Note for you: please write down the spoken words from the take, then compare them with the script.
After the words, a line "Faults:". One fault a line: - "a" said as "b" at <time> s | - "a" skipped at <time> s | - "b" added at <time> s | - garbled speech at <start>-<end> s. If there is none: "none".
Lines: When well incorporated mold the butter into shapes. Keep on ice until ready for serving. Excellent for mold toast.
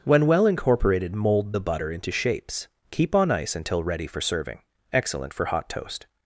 When well incorporated mold the butter into shapes. Keep on ice until ready for serving. Excellent for hot toast.
Faults:
- "mold" said as "hot" at 5.5 s